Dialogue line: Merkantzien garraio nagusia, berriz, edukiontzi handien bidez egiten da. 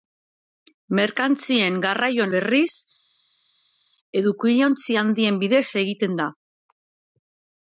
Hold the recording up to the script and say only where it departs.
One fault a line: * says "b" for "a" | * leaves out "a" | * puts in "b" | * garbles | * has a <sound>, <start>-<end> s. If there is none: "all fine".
* leaves out "nagusia"